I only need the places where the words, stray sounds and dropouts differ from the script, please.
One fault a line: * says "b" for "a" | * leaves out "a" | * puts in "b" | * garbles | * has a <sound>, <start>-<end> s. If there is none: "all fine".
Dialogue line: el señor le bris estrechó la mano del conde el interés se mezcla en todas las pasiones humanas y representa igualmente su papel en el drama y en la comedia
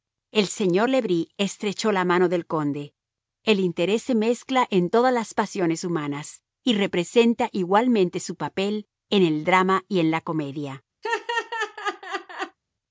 * has a laugh, 11.0-12.6 s